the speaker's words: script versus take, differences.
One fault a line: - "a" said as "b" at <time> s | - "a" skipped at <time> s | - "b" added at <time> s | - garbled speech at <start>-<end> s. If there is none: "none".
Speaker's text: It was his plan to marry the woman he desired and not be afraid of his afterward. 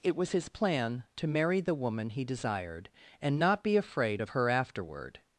- "his" said as "her" at 4.3 s